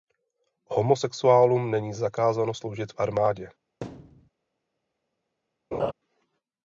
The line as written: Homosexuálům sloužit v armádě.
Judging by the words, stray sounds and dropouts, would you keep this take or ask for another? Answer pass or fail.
fail